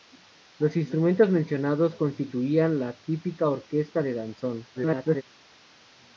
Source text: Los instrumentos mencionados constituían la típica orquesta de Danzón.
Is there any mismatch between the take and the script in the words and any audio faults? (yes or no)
yes